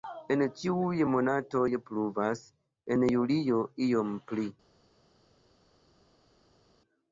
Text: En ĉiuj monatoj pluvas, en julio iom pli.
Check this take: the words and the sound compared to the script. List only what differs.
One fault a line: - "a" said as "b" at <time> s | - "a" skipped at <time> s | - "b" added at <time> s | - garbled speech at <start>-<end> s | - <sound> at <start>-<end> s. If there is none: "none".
none